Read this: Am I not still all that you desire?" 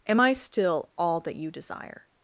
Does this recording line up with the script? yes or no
no